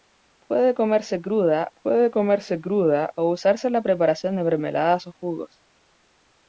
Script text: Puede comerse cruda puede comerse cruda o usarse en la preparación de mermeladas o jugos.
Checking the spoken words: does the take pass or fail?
pass